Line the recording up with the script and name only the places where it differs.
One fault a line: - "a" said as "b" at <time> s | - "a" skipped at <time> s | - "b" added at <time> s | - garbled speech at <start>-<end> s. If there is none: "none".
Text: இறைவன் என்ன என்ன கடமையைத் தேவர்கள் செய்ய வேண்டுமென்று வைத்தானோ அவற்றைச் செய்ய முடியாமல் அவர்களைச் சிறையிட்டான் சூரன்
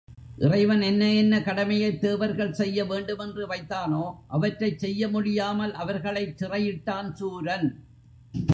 none